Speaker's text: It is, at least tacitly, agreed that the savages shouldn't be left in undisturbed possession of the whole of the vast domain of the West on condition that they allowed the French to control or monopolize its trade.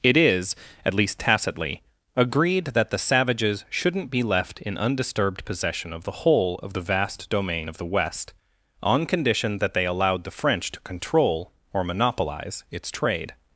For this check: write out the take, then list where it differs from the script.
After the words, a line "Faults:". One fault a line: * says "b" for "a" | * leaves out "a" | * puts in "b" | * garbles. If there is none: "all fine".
It is, at least tacitly, agreed that the savages shouldn't be left in undisturbed possession of the whole of the vast domain of the West on condition that they allowed the French to control or monopolize its trade.
Faults:
all fine